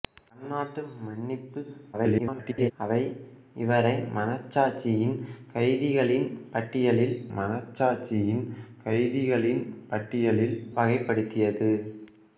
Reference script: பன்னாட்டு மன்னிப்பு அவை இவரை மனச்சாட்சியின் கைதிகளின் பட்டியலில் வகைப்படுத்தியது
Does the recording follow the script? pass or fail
fail